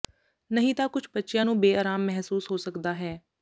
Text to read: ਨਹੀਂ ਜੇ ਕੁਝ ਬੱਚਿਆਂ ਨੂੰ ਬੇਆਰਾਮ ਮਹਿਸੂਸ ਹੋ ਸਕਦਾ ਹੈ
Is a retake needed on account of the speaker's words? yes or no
yes